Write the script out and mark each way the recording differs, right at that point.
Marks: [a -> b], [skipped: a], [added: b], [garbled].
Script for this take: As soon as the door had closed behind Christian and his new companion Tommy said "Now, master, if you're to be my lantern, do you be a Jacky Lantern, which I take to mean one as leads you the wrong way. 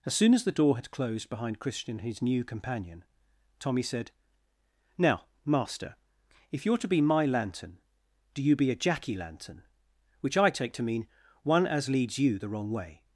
As soon as the door had closed behind Christian and his new companion Tommy said "Now, master, if you're to be my lantern, do you be a Jacky Lantern, which I take to mean one as leads you the wrong way.